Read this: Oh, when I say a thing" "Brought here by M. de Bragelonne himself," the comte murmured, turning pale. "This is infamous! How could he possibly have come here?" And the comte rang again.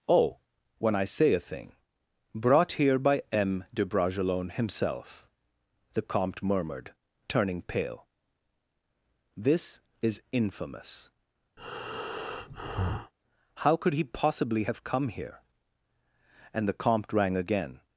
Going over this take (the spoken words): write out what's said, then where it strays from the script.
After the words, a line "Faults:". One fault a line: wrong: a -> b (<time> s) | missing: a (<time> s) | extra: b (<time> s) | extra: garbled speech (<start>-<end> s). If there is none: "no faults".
Oh, when I say a thing" "Brought here by M. de Bragelonne himself," the comte murmured, turning pale. "This is infamous! How could he possibly have come here?" And the comte rang again.
Faults:
no faults